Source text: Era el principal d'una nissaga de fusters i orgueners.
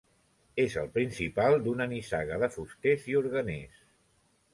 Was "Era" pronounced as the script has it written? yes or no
no